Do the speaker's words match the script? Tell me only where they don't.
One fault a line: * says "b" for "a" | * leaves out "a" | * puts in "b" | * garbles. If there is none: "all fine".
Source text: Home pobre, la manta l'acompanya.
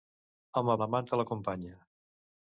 * leaves out "pobre"